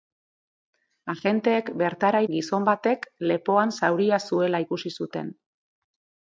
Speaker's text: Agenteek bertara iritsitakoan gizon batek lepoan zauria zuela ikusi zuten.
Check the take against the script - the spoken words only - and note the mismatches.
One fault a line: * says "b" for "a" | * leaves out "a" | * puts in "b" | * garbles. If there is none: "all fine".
* leaves out "iritsitakoan"